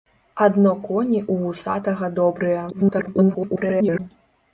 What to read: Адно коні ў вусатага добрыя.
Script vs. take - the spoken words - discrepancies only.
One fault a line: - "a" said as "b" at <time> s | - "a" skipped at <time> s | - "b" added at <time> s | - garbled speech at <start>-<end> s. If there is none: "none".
- garbled speech at 2.7-4.0 s